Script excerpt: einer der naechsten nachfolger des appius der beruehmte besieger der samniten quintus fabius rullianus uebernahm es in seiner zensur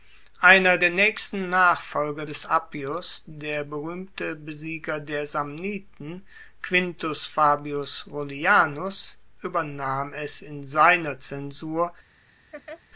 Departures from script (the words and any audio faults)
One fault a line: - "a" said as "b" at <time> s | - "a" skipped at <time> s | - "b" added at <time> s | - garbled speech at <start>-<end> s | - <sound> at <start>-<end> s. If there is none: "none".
- laugh at 12.5-12.8 s